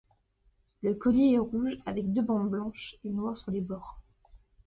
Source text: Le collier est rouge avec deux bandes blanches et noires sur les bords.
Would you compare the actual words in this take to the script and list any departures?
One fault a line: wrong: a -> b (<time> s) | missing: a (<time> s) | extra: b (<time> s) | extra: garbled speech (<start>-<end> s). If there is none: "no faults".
no faults